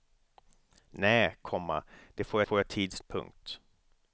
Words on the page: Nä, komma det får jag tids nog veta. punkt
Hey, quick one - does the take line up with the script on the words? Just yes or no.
no